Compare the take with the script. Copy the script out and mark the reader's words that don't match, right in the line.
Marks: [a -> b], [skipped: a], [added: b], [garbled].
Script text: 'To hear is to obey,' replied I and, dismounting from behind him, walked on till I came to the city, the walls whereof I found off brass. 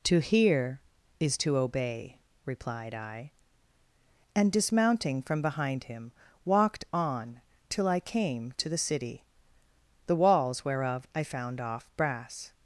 'To hear is to obey,' replied I and, dismounting from behind him, walked on till I came to the city, the walls whereof I found off brass.